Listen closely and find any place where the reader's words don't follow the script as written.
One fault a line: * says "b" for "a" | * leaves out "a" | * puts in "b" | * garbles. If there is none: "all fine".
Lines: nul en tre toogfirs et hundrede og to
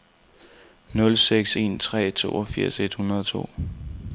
* puts in "seks"